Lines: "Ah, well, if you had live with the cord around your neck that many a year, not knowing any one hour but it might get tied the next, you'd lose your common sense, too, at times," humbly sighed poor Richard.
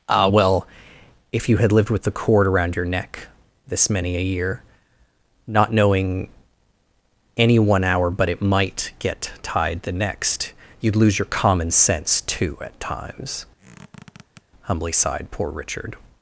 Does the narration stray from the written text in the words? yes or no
yes